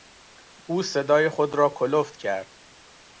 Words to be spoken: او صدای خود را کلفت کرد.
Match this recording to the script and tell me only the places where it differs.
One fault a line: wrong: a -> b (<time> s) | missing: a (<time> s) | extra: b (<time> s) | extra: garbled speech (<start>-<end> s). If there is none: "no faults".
no faults